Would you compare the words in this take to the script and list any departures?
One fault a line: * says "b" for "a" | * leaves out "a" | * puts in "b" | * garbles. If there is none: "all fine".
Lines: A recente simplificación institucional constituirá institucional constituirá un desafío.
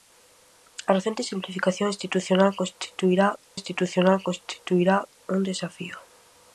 all fine